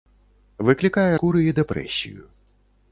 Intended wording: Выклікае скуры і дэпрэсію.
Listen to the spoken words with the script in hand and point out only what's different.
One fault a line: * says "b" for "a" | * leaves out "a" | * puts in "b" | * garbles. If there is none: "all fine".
all fine